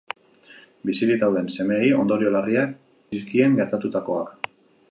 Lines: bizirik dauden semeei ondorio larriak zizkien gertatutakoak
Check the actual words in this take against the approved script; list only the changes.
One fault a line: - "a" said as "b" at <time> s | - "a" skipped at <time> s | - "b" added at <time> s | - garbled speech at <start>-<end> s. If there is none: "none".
none